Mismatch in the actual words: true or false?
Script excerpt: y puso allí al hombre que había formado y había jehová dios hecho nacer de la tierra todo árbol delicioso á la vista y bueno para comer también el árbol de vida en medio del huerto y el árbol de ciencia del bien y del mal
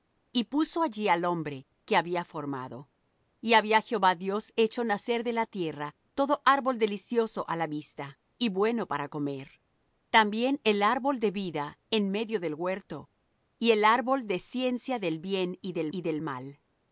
true